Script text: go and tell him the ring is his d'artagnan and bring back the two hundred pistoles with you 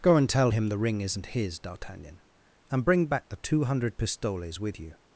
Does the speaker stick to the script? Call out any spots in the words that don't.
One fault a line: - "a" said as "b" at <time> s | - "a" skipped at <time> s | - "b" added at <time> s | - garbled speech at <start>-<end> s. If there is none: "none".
- "is" said as "isn't" at 1.0 s